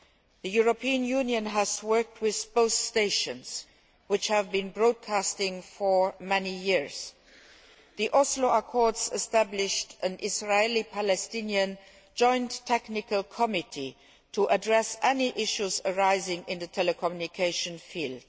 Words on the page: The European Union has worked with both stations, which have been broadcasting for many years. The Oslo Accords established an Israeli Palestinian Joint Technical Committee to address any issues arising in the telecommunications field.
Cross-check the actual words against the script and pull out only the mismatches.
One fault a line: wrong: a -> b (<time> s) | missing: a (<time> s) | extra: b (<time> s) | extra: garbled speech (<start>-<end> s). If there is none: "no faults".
no faults